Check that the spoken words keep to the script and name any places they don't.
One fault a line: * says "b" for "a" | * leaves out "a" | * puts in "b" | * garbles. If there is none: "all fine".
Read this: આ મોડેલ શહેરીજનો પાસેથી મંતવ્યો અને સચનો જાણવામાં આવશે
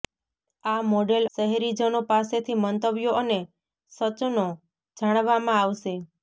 all fine